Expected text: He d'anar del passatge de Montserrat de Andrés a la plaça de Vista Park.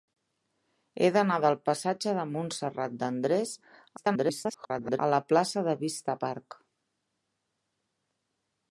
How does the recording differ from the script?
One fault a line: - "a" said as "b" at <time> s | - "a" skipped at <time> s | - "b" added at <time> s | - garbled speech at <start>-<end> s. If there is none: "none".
- garbled speech at 4.0-5.0 s